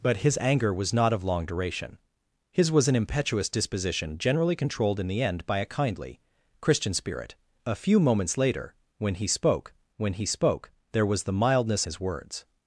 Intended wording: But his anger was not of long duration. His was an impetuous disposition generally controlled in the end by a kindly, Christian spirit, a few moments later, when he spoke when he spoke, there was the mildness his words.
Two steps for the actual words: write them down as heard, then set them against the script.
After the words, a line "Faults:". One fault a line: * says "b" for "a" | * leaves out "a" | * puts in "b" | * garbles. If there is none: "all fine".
But his anger was not of long duration. His was an impetuous disposition generally controlled in the end by a kindly, Christian spirit, a few moments later, when he spoke when he spoke, there was the mildness his words.
Faults:
all fine